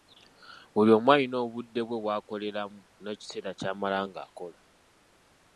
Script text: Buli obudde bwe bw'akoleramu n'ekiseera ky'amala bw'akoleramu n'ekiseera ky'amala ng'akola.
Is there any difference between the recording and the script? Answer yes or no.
yes